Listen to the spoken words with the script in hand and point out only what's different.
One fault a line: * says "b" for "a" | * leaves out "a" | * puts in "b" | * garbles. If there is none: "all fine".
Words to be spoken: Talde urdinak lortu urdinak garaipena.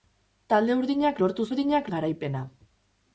all fine